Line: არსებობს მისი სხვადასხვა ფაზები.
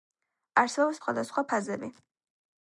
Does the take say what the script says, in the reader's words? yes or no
no